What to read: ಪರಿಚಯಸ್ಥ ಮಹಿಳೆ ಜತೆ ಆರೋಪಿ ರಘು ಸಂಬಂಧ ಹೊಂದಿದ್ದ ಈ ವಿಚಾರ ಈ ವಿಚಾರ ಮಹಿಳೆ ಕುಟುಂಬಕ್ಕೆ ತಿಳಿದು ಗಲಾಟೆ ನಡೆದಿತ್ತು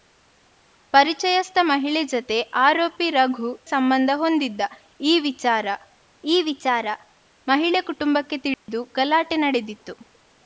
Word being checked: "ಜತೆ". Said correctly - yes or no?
yes